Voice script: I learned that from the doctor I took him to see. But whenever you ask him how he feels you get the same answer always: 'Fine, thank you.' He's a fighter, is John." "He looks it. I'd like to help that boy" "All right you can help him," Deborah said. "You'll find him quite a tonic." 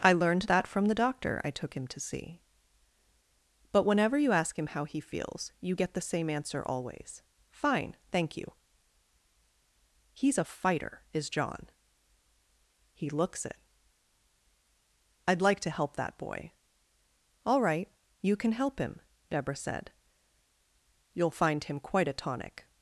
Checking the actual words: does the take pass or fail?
pass